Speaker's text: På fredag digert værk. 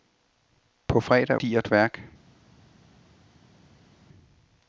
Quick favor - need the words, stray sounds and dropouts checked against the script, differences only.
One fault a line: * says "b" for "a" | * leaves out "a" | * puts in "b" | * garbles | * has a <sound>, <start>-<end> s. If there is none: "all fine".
all fine